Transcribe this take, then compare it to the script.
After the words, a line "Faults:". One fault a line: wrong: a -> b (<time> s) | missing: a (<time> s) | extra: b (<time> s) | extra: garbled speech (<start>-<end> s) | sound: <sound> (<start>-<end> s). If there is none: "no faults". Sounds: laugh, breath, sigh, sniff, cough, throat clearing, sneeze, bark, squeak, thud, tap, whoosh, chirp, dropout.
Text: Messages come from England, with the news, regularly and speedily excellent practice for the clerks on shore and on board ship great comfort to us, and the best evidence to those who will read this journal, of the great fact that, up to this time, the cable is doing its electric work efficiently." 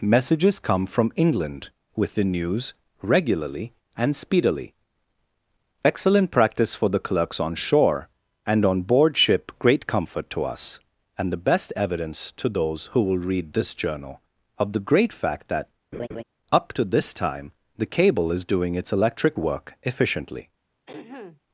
Messages come from England, with the news, regularly and speedily excellent practice for the clerks on shore and on board ship great comfort to us, and the best evidence to those who will read this journal, of the great fact that, up to this time, the cable is doing its electric work efficiently."
Faults:
sound: laugh (15.9-16.2 s)
sound: throat clearing (20.9-21.4 s)